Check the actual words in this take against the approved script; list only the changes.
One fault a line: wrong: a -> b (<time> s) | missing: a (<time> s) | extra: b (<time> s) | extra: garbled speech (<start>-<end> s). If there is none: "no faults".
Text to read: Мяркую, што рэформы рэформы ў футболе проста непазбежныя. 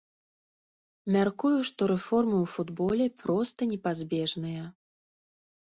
missing: рэформы (2.4 s)